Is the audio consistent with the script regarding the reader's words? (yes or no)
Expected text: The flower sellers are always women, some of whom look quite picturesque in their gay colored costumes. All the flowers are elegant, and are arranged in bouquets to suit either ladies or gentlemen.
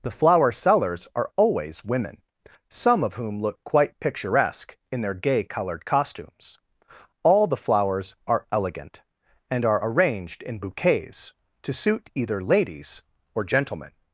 yes